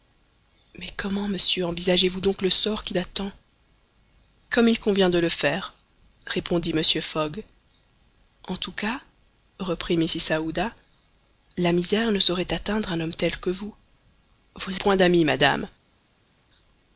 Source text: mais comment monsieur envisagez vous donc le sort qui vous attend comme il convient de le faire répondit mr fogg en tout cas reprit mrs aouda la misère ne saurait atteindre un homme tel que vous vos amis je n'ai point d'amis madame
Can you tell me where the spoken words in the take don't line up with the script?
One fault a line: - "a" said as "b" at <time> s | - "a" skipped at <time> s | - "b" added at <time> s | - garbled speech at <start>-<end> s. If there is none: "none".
- "vous" skipped at 3.0 s
- "amis je n'ai" skipped at 14.8 s